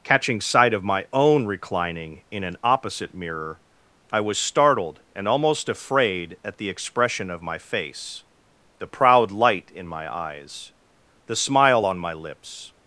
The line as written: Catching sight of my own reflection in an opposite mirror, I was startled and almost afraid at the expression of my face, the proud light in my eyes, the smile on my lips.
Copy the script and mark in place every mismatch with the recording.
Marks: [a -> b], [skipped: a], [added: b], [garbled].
Catching sight of my own [reflection -> reclining] in an opposite mirror, I was startled and almost afraid at the expression of my face, the proud light in my eyes, the smile on my lips.